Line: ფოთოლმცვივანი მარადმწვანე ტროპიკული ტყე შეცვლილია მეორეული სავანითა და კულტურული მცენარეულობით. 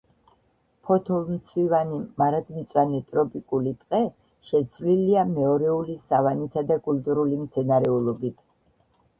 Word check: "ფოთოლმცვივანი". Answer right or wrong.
right